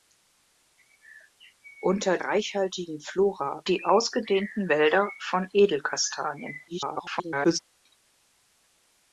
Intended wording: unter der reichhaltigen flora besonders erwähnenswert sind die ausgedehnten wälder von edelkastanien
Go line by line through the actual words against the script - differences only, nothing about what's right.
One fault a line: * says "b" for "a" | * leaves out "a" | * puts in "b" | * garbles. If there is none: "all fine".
* leaves out "der"
* leaves out "besonders erwähnenswert sind"
* garbles